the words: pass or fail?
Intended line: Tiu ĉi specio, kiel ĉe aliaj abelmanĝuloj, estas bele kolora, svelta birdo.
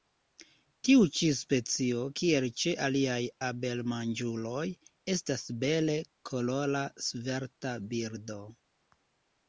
pass